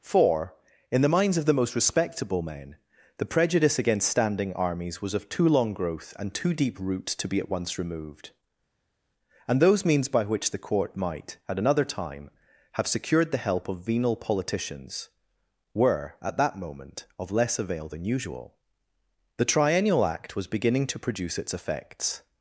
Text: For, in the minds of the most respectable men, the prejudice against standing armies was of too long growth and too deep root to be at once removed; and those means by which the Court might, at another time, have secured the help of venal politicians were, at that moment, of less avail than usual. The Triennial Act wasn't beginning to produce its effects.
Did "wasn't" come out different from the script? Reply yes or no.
yes